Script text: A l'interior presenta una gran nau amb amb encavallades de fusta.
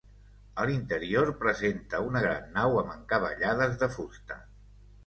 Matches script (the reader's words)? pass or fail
fail